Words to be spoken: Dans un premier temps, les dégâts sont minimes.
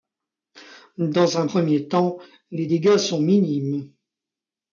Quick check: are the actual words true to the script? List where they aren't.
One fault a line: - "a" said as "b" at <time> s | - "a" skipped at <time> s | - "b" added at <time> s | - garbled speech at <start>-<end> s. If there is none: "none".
none